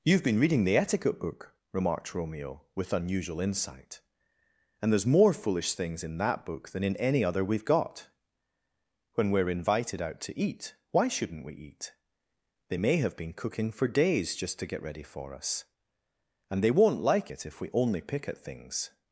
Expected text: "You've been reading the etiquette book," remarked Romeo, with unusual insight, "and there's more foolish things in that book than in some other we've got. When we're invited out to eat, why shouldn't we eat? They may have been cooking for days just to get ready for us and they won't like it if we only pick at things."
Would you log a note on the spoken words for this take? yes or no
yes